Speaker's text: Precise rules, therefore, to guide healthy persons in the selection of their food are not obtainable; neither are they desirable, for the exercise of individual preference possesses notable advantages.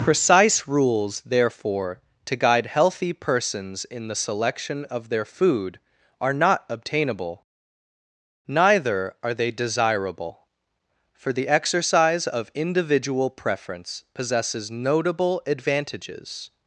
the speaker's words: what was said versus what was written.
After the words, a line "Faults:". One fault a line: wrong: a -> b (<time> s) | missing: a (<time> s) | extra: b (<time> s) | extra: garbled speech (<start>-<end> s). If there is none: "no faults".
Precise rules, therefore, to guide healthy persons in the selection of their food are not obtainable; neither are they desirable, for the exercise of individual preference possesses notable advantages.
Faults:
no faults